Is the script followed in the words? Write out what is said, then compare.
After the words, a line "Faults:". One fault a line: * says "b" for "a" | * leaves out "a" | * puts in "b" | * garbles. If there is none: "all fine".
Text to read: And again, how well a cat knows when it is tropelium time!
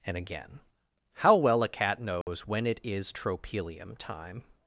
And again, how well a cat knows when it is tropelium time!
Faults:
all fine